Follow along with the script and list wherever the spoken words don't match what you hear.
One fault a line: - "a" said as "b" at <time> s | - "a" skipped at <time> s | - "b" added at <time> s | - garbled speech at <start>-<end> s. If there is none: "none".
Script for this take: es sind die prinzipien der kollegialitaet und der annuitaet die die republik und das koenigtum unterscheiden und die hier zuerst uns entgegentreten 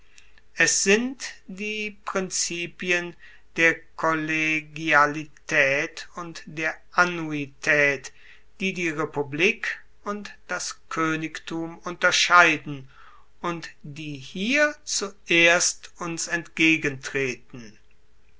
none